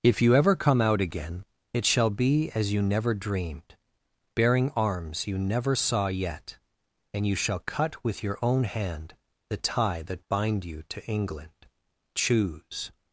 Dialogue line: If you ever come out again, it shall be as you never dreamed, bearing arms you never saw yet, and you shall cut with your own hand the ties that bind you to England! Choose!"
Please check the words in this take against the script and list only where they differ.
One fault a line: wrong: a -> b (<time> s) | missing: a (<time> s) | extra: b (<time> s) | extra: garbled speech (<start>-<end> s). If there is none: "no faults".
wrong: ties -> tie (9.6 s)